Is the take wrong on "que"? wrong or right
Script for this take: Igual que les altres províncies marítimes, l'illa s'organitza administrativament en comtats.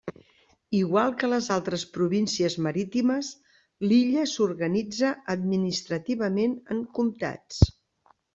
right